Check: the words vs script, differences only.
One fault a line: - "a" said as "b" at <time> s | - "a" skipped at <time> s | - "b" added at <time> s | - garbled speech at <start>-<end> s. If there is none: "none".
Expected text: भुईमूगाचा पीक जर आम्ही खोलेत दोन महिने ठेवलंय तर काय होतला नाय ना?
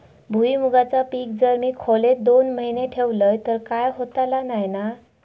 - "आम्ही" said as "मी" at 1.5 s